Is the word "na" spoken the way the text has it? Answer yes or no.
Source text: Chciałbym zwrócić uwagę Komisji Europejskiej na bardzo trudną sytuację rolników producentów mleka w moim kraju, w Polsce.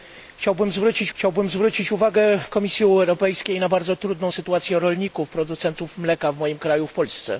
yes